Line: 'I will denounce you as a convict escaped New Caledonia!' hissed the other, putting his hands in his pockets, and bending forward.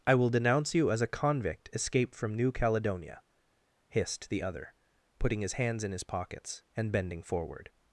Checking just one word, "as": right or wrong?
right